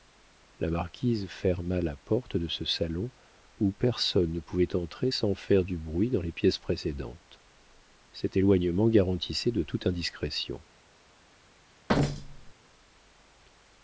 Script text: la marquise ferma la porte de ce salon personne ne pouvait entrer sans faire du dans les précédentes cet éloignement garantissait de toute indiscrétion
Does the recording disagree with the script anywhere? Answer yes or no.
yes